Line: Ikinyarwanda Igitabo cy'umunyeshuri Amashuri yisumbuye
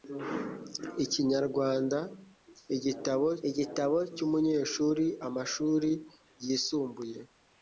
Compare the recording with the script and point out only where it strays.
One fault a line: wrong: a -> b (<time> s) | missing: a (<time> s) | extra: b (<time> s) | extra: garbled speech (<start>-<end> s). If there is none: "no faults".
extra: Igitabo (3.5 s)